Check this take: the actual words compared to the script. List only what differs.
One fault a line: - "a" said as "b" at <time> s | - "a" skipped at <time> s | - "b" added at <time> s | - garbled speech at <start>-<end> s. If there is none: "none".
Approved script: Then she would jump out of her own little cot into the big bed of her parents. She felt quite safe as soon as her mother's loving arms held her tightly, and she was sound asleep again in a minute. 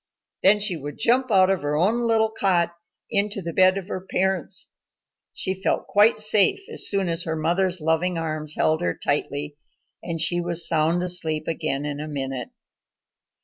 - "big" skipped at 3.5 s